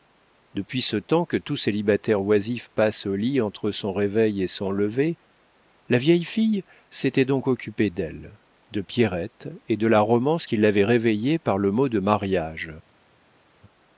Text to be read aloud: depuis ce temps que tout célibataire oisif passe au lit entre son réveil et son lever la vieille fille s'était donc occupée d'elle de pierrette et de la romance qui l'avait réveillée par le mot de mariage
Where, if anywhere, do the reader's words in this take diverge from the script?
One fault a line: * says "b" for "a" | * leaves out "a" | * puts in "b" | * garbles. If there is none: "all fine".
all fine